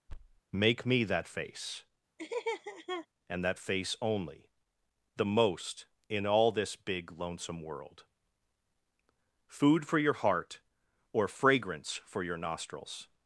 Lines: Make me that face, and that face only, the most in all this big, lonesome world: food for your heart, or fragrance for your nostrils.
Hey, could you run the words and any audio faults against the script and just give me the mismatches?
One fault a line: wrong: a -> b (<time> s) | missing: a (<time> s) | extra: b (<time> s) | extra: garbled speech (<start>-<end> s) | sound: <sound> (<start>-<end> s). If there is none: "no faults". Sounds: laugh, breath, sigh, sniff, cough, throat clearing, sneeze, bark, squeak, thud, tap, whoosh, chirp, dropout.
sound: thud (0.1-0.4 s)
sound: laugh (2.2-3.1 s)